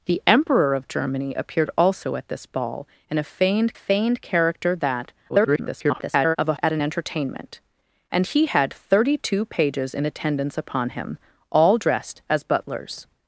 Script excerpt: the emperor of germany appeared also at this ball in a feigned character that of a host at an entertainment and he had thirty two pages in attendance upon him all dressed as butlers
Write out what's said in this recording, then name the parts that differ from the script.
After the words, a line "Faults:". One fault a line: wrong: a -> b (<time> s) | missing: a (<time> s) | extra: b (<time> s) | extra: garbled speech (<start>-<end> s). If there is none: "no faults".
the emperor of germany appeared also at this ball in a feigned feigned character that [garbled] of a at an entertainment and he had thirty two pages in attendance upon him all dressed as butlers
Faults:
extra: feigned (3.7 s)
extra: garbled speech (5.3-6.4 s)
missing: host (6.5 s)